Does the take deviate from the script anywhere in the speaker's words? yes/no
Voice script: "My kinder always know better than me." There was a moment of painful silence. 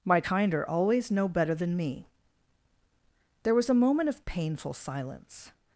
no